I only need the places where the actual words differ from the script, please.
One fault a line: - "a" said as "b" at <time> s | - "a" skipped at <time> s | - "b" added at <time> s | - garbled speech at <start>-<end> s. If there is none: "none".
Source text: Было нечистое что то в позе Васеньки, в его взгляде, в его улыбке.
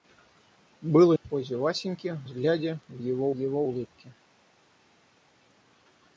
- "нечистое что то" skipped at 1.1 s
- "его" skipped at 2.3 s
- "его" added at 3.3 s